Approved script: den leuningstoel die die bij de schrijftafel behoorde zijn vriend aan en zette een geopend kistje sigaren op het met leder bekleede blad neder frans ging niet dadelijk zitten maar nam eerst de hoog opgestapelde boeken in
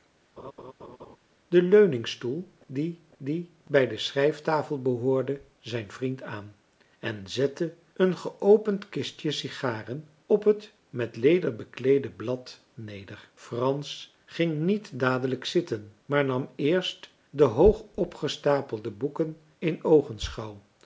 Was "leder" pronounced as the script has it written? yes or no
yes